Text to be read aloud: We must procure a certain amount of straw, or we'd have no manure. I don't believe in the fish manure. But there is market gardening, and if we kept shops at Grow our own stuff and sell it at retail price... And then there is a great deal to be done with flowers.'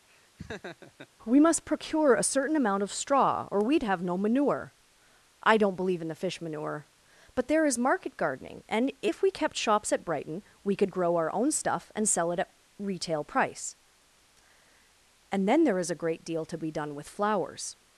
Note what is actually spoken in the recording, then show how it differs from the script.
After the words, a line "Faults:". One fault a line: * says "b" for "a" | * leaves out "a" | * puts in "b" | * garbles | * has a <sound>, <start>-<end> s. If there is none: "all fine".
We must procure a certain amount of straw, or we'd have no manure. I don't believe in the fish manure. But there is market gardening, and if we kept shops at Brighton, we could grow our own stuff and sell it at retail price... And then there is a great deal to be done with flowers.'
Faults:
* has a laugh, 0.1-1.1 s
* puts in "Brighton we could"